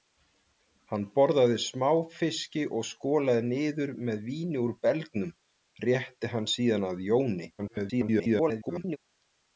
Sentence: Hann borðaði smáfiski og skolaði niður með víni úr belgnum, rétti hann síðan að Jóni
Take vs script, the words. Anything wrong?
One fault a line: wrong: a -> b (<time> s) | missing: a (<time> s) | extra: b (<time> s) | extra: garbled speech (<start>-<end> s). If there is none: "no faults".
extra: garbled speech (7.6-9.0 s)